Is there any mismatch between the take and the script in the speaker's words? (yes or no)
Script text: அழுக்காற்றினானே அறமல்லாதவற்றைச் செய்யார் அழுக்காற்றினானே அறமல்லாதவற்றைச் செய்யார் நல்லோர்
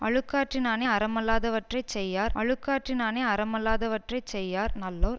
no